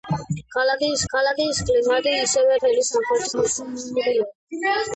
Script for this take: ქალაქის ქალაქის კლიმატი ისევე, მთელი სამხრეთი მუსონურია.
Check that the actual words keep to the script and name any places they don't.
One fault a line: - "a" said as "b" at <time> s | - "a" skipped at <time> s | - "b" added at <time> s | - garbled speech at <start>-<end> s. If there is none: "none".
none